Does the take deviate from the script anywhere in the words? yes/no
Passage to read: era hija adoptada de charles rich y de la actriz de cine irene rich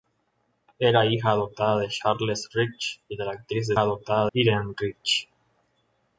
yes